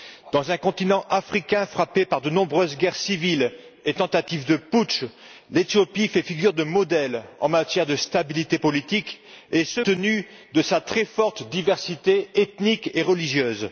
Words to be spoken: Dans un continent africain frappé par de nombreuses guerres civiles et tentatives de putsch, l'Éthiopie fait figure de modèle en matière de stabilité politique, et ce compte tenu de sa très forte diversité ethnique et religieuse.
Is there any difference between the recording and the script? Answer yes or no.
yes